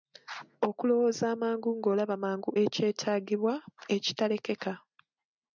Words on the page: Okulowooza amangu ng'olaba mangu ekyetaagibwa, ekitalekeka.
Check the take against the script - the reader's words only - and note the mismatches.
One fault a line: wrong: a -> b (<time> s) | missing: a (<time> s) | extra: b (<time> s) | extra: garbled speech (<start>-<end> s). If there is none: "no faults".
no faults